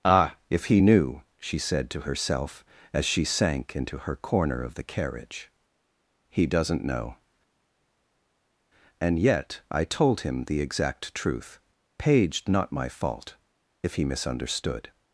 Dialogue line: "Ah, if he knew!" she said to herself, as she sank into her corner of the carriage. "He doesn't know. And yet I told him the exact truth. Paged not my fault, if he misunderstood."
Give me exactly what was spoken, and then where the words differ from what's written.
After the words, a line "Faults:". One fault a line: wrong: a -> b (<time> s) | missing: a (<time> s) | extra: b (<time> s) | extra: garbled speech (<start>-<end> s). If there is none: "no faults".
"Ah, if he knew!" she said to herself, as she sank into her corner of the carriage. "He doesn't know. And yet I told him the exact truth. Paged not my fault, if he misunderstood."
Faults:
no faults